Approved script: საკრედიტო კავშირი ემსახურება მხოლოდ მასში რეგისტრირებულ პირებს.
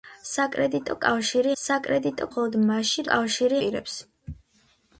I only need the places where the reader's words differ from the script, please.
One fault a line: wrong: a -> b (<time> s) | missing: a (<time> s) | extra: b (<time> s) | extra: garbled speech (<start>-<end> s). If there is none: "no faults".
wrong: ემსახურება -> საკრედიტო (1.6 s)
wrong: რეგისტრირებულ -> კავშირი (3.1 s)